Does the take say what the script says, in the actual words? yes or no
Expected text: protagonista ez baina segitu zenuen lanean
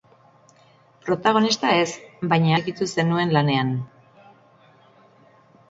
yes